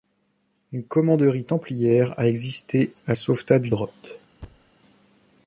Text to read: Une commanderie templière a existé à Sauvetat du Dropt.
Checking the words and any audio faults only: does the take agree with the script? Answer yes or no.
no